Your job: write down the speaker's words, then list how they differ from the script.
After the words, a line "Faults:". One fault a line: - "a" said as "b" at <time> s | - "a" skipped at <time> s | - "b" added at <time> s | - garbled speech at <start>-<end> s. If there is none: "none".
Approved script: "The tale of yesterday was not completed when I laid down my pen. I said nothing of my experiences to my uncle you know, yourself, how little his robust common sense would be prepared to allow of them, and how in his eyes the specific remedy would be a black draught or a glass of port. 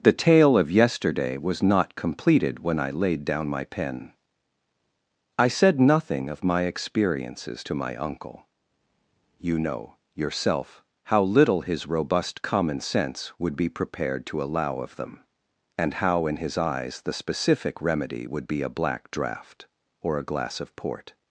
"The tale of yesterday was not completed when I laid down my pen. I said nothing of my experiences to my uncle you know, yourself, how little his robust common sense would be prepared to allow of them, and how in his eyes the specific remedy would be a black draught or a glass of port.
Faults:
none